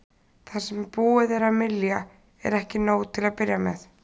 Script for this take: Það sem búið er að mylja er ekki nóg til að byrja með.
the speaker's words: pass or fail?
pass